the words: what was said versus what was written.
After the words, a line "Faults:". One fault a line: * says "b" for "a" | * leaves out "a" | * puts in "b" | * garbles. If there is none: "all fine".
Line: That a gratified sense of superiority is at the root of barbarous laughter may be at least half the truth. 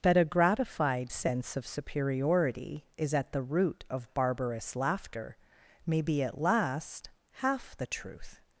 That a gratified sense of superiority is at the root of barbarous laughter may be at last half the truth.
Faults:
* says "last" for "least"